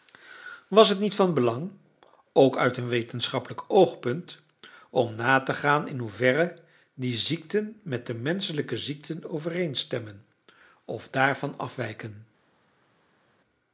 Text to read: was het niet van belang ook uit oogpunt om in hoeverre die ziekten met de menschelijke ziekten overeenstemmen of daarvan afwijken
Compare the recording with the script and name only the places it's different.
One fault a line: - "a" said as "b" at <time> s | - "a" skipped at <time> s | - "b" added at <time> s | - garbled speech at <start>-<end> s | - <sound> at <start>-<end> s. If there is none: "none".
- "een wetenschappelijk" added at 2.8 s
- "na te gaan" added at 5.2 s